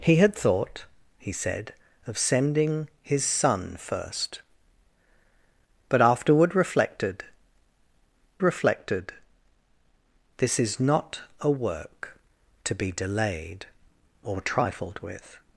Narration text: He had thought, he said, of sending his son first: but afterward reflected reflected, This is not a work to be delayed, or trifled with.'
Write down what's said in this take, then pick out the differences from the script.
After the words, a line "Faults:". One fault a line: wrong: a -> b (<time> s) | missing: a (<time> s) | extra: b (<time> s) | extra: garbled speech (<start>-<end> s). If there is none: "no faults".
He had thought, he said, of sending his son first: but afterward reflected reflected, This is not a work to be delayed, or trifled with.'
Faults:
no faults